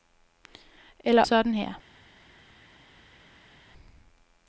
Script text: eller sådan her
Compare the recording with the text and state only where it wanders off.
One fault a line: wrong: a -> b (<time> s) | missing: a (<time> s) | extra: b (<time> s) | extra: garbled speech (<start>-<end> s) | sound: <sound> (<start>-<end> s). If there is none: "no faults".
no faults